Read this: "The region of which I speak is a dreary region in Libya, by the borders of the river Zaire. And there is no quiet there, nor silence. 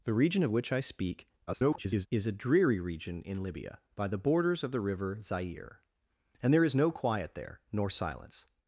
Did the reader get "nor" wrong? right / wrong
right